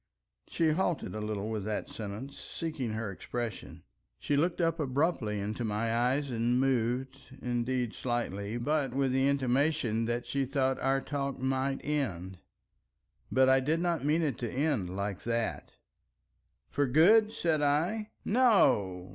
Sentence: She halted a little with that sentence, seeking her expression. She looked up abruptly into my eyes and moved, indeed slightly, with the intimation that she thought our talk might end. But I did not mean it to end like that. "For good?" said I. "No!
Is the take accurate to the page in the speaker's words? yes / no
no